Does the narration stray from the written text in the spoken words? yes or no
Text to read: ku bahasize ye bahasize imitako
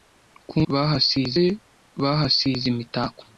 no